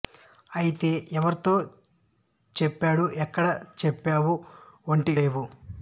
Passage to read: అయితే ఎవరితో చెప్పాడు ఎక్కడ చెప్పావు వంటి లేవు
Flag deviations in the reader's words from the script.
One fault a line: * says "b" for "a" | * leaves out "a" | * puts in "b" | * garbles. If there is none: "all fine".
all fine